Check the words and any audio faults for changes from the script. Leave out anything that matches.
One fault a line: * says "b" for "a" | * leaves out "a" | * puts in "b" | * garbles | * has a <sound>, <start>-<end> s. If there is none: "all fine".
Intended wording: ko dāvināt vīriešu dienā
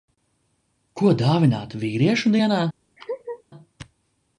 * has a laugh, 3.0-3.4 s